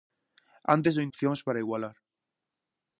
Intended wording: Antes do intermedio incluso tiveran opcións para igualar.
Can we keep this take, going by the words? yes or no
no